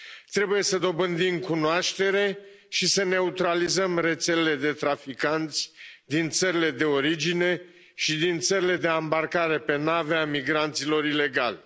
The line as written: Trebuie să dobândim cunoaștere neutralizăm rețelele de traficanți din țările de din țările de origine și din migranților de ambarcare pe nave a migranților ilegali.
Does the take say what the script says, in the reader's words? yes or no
no